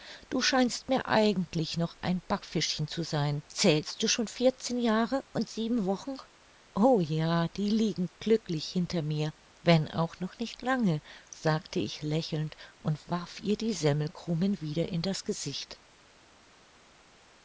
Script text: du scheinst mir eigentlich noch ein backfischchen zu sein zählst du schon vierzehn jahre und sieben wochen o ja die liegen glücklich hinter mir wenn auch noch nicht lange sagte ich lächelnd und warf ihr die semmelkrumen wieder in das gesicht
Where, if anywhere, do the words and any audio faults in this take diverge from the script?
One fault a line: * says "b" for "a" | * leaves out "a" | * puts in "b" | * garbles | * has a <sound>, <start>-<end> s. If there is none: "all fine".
all fine